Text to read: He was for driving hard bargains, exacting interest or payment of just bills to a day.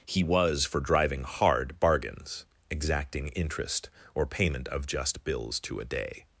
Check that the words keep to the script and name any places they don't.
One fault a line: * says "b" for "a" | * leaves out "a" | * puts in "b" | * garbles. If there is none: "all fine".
all fine